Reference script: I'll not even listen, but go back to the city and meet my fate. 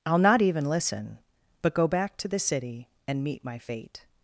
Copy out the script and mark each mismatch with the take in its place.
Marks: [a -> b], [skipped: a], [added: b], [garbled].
I'll not even listen, but go back to the city and meet my fate.